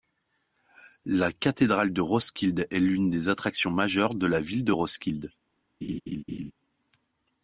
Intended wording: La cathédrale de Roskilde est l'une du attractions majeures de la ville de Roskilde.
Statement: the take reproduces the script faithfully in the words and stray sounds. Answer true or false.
false